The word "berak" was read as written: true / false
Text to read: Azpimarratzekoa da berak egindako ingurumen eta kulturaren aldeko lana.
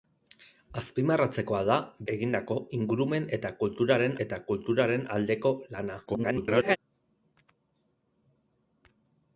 false